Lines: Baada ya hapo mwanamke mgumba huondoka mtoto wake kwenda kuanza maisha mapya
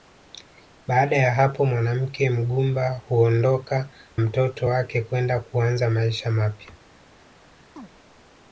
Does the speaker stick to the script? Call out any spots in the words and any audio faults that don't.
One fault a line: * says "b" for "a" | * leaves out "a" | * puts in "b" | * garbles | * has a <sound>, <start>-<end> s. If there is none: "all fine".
* has a chirp, 7.8-7.9 s